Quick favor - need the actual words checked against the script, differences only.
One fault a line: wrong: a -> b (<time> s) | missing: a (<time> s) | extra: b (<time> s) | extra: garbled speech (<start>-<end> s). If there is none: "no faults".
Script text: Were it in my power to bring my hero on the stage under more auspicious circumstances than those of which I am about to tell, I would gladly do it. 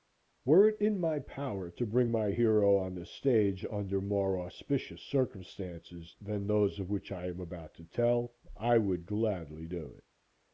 no faults